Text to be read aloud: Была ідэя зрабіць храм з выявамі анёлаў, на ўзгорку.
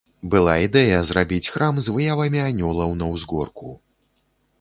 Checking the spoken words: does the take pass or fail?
pass